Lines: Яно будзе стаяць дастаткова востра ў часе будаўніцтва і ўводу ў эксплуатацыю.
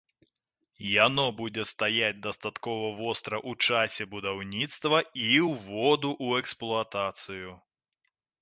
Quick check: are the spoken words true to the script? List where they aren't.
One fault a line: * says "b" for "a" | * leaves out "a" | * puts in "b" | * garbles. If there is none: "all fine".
all fine